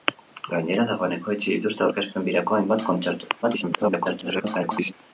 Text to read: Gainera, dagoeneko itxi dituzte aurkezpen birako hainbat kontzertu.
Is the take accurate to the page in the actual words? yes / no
no